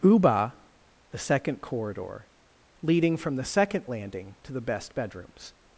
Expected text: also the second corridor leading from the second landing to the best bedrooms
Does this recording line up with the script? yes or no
no